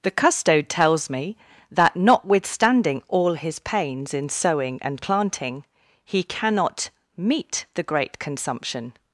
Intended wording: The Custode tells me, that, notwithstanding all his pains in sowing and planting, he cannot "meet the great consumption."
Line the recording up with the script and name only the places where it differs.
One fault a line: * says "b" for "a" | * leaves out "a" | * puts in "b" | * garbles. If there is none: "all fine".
all fine